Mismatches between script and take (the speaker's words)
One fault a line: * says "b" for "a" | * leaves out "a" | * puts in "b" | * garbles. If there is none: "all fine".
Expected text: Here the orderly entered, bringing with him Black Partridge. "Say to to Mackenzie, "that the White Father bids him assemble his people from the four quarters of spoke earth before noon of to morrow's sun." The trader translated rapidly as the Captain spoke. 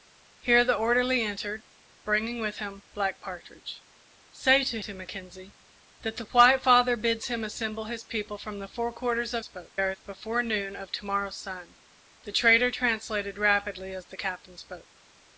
all fine